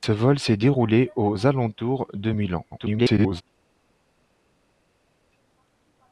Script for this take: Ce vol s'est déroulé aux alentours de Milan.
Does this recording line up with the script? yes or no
no